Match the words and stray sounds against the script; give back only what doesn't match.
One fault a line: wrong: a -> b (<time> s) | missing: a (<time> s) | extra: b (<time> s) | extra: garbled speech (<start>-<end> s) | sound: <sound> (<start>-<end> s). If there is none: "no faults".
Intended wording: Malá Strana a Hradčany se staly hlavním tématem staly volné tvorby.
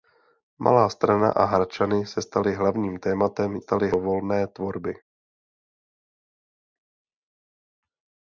no faults